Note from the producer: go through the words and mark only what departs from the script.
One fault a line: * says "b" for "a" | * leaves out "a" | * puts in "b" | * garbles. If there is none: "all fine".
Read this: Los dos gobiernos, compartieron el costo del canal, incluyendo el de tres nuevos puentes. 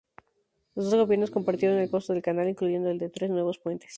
all fine